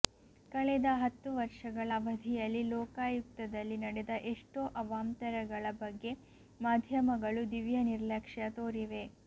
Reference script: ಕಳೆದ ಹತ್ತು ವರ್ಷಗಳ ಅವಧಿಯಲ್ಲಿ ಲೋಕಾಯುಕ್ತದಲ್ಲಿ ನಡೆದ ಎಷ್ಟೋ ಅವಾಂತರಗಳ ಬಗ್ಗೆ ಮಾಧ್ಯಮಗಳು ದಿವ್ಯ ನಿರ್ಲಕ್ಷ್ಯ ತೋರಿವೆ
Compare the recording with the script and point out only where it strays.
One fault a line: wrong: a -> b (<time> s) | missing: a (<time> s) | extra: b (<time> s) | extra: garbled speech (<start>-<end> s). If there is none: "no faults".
no faults